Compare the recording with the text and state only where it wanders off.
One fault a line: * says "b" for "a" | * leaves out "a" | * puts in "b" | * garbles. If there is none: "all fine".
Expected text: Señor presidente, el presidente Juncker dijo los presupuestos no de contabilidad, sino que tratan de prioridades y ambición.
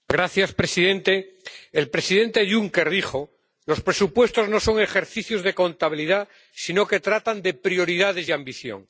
* puts in "son ejercicios"